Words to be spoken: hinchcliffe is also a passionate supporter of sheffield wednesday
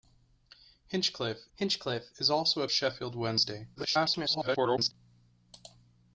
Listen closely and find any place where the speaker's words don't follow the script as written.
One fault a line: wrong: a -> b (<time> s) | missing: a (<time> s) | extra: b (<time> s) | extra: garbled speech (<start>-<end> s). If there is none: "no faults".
extra: hinchcliffe (1.5 s)
missing: passionate supporter of (2.7 s)
extra: garbled speech (3.8-4.9 s)